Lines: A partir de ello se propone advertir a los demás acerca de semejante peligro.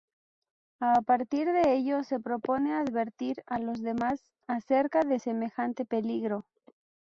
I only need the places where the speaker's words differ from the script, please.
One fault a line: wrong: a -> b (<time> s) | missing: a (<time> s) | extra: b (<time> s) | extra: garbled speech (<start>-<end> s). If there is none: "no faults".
no faults